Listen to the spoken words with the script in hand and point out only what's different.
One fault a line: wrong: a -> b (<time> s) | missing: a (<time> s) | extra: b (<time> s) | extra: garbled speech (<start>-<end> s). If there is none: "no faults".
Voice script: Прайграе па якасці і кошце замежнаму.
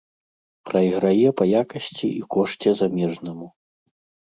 no faults